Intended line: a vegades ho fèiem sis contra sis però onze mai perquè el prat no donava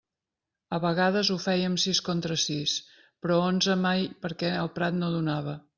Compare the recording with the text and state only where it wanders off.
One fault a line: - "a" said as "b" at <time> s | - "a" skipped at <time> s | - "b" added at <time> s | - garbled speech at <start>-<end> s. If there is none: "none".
none